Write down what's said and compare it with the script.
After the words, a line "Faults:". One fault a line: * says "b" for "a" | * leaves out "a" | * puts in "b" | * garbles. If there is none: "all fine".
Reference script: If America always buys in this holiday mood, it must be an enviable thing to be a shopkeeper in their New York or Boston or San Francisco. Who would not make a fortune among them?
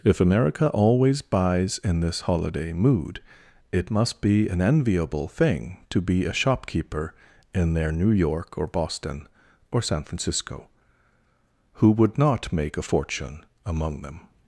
If America always buys in this holiday mood, it must be an enviable thing to be a shopkeeper in their New York or Boston or San Francisco. Who would not make a fortune among them?
Faults:
all fine